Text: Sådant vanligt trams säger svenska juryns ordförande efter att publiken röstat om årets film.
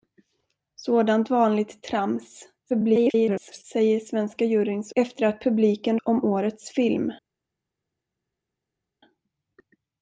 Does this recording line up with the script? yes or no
no